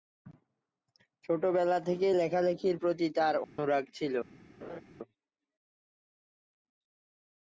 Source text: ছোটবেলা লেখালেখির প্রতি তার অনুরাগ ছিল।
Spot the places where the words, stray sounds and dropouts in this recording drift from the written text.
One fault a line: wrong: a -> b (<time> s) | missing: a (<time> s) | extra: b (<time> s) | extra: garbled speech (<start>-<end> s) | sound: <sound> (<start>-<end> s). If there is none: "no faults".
extra: থেকেই (1.9 s)
sound: dropout (3.4-3.6 s)
sound: laugh (4.6-4.8 s)